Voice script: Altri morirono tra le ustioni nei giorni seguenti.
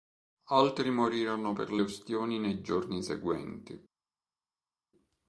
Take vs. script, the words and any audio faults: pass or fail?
fail